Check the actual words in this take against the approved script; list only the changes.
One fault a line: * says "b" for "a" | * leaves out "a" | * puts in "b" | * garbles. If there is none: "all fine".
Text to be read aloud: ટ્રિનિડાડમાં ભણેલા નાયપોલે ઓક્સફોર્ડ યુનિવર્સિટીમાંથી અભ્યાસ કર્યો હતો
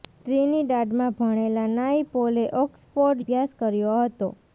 * leaves out "યુનિવર્સિટીમાંથી"